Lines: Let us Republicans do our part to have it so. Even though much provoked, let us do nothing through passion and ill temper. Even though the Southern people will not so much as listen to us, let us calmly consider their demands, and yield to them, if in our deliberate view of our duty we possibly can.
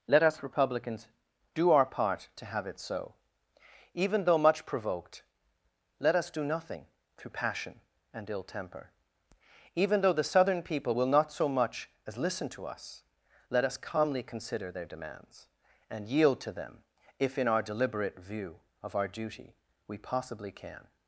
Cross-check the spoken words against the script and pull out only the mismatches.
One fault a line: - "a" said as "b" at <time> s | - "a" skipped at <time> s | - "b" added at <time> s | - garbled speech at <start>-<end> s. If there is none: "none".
none